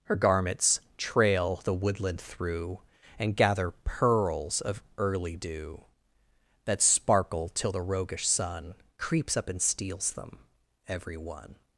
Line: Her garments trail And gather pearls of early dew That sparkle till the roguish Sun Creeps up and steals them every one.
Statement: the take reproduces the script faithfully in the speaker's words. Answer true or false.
false